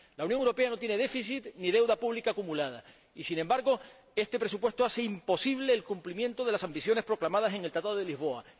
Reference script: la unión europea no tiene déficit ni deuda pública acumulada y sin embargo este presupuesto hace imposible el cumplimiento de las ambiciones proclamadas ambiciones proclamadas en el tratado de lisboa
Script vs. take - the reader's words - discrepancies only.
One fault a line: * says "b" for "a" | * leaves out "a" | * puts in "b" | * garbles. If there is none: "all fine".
* leaves out "ambiciones proclamadas"